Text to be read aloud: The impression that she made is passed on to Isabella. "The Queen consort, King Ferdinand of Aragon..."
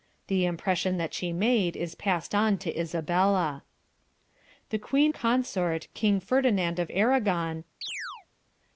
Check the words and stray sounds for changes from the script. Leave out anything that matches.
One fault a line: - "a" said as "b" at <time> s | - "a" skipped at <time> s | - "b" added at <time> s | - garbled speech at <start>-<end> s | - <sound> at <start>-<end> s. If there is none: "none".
- chirp at 7.8-8.3 s